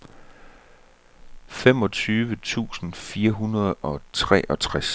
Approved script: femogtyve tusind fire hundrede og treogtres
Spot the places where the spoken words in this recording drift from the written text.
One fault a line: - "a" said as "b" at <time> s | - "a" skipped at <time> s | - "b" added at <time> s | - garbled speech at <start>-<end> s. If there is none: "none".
none